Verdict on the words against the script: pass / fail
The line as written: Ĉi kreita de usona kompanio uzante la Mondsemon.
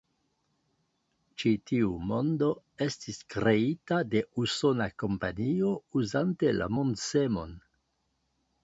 fail